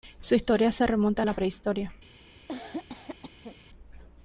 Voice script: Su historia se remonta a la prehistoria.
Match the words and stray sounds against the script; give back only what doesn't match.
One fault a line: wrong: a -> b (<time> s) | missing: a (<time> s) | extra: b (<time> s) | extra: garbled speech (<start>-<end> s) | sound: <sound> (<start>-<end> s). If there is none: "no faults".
sound: cough (2.5-3.6 s)